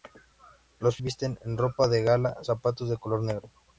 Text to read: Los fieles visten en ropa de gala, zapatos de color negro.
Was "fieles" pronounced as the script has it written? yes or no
no